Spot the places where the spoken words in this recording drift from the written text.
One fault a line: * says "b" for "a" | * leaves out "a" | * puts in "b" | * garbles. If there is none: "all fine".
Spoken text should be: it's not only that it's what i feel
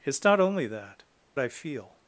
* leaves out "it's what"